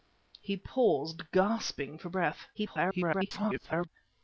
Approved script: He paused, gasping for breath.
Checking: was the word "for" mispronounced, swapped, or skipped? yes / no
no